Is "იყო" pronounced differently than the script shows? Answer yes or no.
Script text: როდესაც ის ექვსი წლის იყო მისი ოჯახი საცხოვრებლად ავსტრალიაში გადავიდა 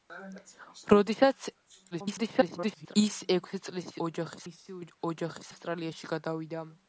yes